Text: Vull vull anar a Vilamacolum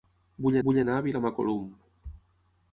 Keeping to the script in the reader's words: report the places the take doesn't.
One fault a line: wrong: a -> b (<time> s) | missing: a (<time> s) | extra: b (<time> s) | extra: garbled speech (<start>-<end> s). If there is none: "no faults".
no faults